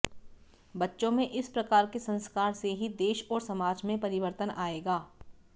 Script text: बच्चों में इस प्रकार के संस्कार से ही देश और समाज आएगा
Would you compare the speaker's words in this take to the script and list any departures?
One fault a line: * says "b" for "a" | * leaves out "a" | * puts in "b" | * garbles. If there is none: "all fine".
* puts in "में परिवर्तन"